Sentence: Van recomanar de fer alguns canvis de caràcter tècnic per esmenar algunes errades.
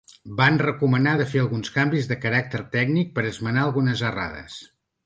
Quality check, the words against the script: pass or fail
pass